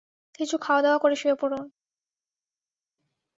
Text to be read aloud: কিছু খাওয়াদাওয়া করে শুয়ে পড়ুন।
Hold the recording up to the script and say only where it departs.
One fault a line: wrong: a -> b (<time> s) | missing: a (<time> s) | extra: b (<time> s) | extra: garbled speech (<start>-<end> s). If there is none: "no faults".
no faults